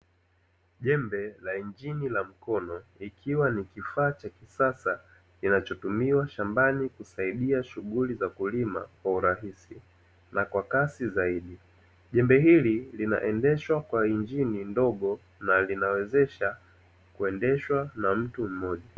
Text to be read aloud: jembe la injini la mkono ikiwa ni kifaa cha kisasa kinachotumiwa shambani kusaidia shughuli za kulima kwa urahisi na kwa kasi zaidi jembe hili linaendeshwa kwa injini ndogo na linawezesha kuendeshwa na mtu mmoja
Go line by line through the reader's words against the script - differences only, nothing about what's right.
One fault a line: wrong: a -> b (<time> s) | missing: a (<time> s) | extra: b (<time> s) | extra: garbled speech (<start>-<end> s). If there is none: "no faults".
no faults